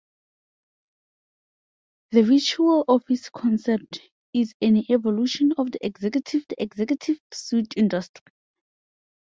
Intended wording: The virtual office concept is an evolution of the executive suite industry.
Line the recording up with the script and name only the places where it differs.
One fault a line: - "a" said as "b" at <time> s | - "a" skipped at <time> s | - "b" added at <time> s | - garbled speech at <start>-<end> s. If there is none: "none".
- "the executive" added at 6.5 s